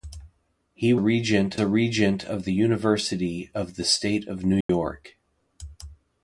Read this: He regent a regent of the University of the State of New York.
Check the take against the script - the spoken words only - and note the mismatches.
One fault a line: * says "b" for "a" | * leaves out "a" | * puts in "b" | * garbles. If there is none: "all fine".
all fine